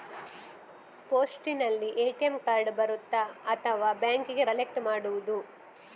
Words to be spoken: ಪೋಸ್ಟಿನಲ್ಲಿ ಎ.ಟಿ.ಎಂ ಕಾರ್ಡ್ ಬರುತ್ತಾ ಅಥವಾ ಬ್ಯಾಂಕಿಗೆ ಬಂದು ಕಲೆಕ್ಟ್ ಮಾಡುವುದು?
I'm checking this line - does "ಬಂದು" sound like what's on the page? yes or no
no